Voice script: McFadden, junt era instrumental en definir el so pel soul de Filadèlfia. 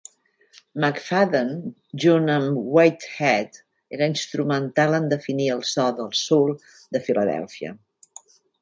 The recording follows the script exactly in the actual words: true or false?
false